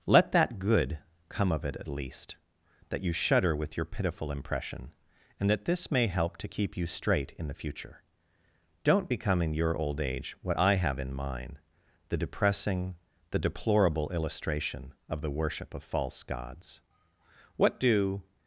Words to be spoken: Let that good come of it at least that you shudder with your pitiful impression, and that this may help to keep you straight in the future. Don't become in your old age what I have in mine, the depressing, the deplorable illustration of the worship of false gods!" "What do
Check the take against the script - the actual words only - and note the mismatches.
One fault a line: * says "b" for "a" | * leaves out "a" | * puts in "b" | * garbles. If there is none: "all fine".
all fine